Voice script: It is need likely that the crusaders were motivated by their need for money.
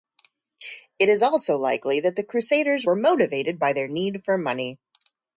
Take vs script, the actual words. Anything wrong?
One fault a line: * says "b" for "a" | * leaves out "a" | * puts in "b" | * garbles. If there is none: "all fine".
* says "also" for "need"